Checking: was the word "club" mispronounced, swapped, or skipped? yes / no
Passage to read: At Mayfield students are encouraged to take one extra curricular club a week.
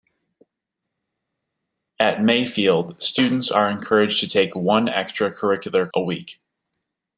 yes